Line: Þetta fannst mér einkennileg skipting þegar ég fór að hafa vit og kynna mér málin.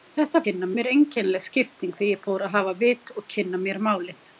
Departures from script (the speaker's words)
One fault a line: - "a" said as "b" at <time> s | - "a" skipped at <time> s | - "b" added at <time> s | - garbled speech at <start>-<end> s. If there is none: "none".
- "fannst" said as "kynna" at 0.5 s